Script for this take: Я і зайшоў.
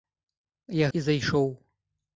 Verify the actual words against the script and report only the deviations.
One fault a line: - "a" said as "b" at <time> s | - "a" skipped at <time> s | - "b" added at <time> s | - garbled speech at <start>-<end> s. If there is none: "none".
none